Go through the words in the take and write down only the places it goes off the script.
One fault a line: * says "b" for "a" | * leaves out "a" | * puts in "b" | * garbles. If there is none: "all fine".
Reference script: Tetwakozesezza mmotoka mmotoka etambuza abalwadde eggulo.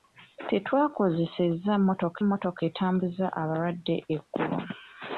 all fine